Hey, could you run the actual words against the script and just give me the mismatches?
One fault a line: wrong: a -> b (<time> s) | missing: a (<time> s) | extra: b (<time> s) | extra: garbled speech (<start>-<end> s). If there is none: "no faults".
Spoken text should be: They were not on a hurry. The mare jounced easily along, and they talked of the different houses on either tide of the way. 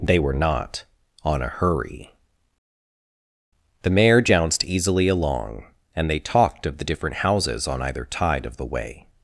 no faults